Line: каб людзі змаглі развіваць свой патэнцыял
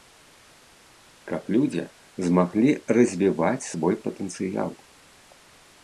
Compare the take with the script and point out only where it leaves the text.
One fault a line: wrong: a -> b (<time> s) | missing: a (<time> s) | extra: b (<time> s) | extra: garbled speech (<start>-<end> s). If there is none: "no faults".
no faults